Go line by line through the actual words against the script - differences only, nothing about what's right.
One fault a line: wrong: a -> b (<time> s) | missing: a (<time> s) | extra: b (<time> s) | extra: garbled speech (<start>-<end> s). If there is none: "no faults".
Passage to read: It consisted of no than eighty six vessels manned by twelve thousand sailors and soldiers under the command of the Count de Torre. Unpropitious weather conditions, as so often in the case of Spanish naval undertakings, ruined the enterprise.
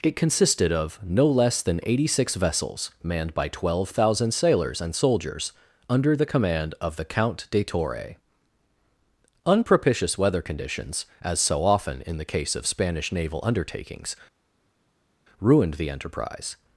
extra: less (1.3 s)